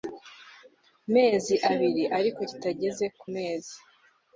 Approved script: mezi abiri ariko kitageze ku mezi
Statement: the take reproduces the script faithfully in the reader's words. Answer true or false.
true